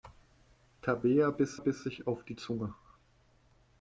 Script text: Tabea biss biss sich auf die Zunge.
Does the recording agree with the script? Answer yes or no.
yes